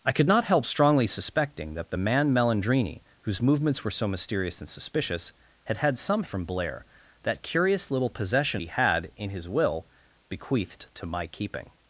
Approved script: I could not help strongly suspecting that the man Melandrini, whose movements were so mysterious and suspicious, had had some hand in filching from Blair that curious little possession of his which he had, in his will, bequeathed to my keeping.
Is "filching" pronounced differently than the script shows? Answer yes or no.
yes